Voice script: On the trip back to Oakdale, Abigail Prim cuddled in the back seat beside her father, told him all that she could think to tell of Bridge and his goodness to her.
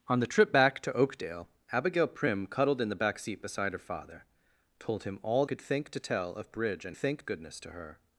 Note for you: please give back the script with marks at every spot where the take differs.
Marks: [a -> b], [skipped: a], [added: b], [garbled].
On the trip back to Oakdale, Abigail Prim cuddled in the back seat beside her father, told him all [skipped: that she] could think to tell of Bridge and [his -> think] goodness to her.